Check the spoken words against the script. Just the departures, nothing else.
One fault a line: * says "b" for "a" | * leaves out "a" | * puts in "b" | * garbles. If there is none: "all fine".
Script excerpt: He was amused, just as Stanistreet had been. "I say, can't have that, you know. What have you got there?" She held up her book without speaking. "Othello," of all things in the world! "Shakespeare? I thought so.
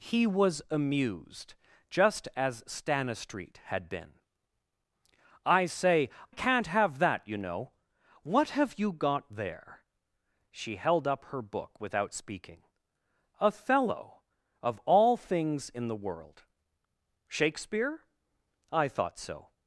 all fine